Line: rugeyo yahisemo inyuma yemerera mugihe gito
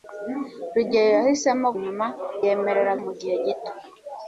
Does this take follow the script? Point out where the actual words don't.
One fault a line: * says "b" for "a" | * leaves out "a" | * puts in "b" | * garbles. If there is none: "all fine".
all fine